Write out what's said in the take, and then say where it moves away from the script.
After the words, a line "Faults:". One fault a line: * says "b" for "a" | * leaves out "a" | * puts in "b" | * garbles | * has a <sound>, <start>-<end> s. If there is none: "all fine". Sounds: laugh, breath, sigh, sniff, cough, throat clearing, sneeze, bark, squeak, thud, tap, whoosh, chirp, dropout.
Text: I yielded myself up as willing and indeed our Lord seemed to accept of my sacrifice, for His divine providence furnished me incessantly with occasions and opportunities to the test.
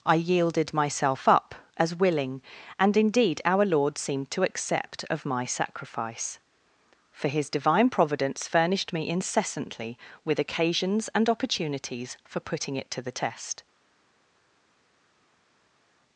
I yielded myself up as willing and indeed our Lord seemed to accept of my sacrifice, for His divine providence furnished me incessantly with occasions and opportunities for putting it to the test.
Faults:
* puts in "for putting it"